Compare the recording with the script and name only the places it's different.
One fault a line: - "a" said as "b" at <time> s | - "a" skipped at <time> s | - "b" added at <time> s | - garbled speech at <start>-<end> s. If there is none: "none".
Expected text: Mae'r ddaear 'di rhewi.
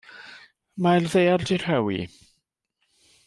none